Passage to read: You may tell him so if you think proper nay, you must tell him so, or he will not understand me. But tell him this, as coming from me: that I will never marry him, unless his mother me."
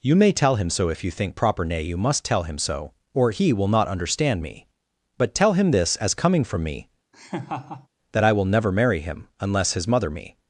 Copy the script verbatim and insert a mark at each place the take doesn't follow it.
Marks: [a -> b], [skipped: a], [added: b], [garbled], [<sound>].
You may tell him so if you think proper nay, you must tell him so, or he will not understand me. But tell him this, as coming from me: [laugh] that I will never marry him, unless his mother me."